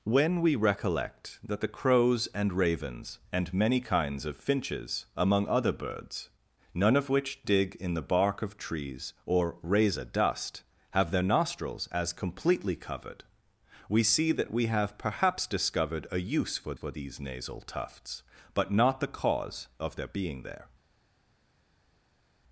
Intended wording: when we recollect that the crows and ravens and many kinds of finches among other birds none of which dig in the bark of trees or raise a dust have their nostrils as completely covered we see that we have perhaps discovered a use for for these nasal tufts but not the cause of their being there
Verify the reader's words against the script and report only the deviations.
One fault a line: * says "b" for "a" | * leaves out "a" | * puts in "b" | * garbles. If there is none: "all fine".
all fine